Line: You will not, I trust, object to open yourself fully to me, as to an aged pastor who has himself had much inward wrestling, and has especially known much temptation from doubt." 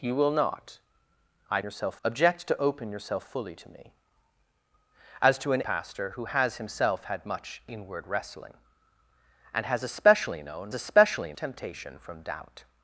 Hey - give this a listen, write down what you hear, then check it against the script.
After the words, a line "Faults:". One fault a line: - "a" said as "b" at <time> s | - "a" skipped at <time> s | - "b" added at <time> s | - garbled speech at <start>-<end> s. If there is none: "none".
You will not, I yourself, object to open yourself fully to me, as to an pastor who has himself had much inward wrestling, and has especially known especially temptation from doubt."
Faults:
- "trust" said as "yourself" at 1.6 s
- "aged" skipped at 5.6 s
- "much" said as "especially" at 10.7 s